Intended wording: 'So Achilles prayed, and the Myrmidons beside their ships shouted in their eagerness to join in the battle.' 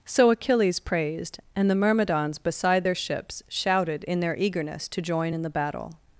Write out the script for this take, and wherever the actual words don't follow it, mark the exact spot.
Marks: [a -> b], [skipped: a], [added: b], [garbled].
'So Achilles [prayed, -> praised] and the Myrmidons beside their ships shouted in their eagerness to join in the battle.'